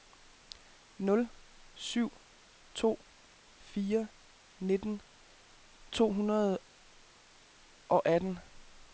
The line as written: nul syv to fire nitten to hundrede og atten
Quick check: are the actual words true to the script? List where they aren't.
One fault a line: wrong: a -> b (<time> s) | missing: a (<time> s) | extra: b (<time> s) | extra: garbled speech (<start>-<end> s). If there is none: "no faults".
no faults